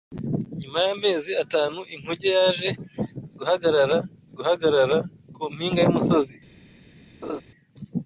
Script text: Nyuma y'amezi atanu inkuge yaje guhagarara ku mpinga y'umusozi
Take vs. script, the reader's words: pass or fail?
fail